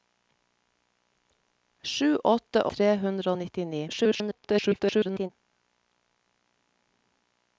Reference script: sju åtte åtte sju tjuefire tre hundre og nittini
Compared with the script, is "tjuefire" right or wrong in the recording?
wrong